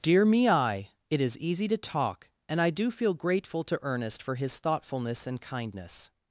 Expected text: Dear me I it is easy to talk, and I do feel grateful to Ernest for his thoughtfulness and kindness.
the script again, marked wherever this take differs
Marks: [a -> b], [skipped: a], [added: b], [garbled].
Dear me I it is easy to talk, and I do feel grateful to Ernest for his thoughtfulness and kindness.